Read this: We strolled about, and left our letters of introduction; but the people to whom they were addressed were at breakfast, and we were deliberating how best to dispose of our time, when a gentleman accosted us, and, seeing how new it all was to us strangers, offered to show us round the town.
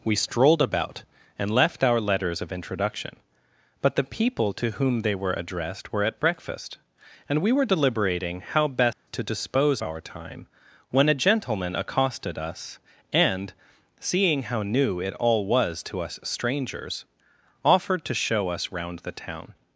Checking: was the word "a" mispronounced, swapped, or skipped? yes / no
no